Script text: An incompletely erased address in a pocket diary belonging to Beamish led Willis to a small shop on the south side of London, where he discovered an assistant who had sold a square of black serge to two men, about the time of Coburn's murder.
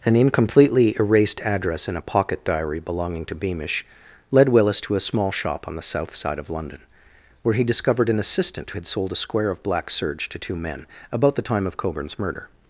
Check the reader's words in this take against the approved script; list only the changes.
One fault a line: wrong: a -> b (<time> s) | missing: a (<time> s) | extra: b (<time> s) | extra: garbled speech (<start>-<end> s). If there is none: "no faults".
missing: who (8.7 s)